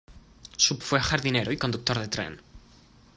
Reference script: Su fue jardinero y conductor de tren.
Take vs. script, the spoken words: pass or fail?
pass